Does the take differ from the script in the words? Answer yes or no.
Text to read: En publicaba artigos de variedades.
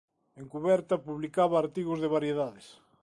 yes